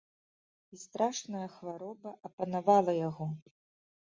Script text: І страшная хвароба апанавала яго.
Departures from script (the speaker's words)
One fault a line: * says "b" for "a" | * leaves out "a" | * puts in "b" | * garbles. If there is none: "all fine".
all fine